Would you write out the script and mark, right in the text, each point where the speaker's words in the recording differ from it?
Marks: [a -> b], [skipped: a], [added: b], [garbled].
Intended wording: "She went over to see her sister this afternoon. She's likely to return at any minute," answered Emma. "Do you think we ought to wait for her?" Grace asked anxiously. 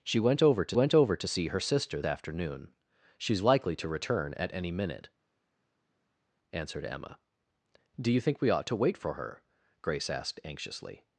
"She went over to [added: went over to] see her sister [skipped: this] afternoon. She's likely to return at any minute," answered Emma. "Do you think we ought to wait for her?" Grace asked anxiously.